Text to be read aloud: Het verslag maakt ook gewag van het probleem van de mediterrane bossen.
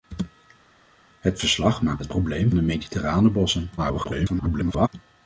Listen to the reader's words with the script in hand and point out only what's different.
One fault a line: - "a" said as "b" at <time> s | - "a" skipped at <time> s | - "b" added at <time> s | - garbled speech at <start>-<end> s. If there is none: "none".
- "ook gewag van" skipped at 2.0 s
- "van" skipped at 2.5 s
- garbled speech at 3.8-4.9 s